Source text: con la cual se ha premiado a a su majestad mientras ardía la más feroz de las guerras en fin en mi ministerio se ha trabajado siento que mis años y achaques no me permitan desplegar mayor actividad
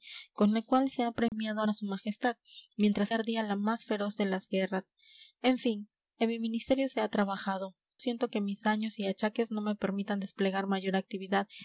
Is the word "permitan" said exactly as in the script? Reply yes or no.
yes